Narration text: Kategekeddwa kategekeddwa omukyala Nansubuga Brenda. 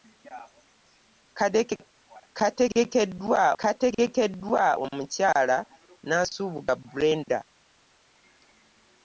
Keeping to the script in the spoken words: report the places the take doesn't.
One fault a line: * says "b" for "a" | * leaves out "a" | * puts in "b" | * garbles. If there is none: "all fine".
all fine